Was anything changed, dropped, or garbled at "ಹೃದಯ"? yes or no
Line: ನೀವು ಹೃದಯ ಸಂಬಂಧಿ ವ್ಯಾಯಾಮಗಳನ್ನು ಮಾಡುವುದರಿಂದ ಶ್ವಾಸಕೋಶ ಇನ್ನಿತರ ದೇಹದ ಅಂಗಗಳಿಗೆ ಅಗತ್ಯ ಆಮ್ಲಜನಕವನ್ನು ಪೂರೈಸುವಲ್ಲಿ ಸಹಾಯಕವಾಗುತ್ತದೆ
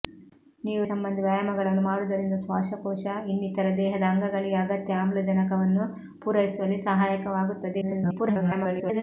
yes